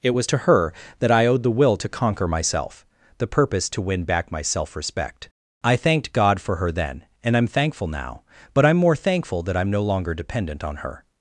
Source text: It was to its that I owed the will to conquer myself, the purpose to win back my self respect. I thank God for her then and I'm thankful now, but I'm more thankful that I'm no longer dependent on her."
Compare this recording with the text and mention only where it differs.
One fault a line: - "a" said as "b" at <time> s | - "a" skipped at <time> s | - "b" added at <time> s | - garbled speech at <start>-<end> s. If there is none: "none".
- "its" said as "her" at 0.4 s
- "thank" said as "thanked" at 5.7 s